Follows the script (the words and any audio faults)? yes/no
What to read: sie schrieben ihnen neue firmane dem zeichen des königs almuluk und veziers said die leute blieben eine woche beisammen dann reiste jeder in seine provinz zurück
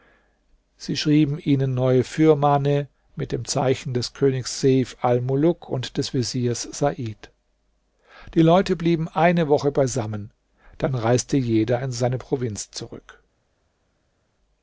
no